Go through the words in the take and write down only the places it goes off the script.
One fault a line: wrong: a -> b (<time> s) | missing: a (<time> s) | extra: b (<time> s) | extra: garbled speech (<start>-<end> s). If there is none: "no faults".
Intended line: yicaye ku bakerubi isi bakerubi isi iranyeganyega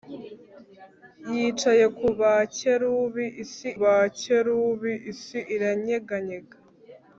no faults